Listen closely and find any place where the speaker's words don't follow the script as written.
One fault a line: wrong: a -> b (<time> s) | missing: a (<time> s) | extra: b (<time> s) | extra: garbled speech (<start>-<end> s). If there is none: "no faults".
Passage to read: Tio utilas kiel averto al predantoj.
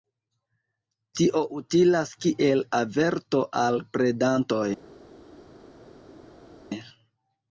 no faults